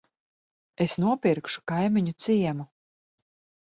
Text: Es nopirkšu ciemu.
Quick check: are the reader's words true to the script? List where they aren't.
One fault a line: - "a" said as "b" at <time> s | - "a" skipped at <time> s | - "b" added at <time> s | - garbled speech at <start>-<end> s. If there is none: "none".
- "kaimiņu" added at 1.7 s